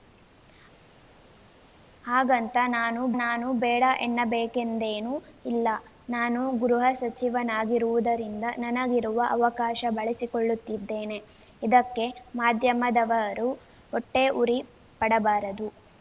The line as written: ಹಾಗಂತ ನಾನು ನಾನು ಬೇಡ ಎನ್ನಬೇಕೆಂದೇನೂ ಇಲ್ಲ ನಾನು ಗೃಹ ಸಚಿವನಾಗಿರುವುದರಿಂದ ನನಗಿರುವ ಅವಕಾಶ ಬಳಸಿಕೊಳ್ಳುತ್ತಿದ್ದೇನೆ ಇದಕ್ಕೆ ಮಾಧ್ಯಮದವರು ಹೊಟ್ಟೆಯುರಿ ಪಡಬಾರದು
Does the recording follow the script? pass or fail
pass